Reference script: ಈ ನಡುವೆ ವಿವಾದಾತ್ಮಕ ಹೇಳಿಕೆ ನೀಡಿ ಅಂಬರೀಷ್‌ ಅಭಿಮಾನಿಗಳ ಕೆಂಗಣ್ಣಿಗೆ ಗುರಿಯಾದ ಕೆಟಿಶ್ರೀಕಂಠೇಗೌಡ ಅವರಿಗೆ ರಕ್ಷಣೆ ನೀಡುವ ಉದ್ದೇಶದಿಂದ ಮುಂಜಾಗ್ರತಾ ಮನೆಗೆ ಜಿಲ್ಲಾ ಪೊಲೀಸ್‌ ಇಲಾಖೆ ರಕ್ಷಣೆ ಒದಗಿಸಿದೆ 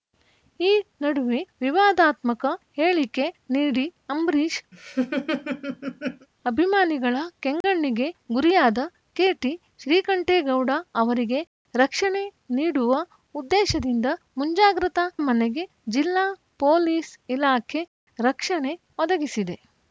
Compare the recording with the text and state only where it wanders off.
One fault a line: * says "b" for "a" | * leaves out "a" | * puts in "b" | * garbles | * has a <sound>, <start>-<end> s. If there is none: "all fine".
* has a laugh, 4.7-6.3 s
* has a dropout, 7.6-7.6 s